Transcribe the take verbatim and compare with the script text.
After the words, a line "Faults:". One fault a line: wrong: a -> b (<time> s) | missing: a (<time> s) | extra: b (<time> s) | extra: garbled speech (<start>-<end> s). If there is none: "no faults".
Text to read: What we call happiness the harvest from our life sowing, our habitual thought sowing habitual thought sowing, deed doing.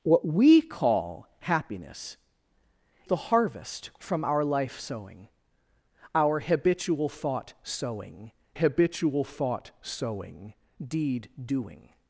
What we call happiness the harvest from our life sowing, our habitual thought sowing habitual thought sowing, deed doing.
Faults:
no faults